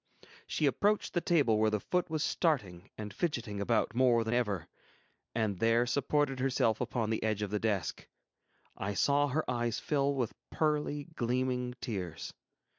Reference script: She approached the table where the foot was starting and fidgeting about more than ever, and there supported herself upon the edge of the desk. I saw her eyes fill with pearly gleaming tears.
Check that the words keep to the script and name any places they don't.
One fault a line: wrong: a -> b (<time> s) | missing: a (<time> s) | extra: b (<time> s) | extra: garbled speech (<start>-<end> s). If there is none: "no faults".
no faults